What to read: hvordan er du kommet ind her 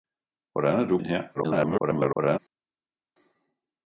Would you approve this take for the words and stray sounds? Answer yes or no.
no